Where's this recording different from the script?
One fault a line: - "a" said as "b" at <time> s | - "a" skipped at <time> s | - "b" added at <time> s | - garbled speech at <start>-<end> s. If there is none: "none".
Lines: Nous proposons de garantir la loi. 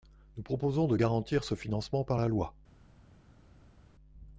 - "ce financement par" added at 1.4 s